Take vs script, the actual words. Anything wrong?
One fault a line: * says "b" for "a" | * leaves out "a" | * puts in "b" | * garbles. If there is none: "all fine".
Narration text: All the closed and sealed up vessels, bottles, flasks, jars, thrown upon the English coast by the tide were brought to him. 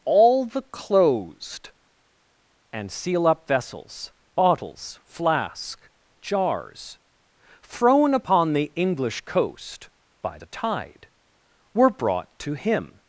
* says "seal" for "sealed"
* says "flask" for "flasks"